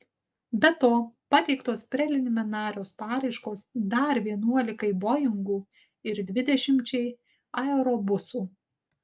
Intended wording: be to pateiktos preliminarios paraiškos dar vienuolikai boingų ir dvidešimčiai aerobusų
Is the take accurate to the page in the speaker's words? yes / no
yes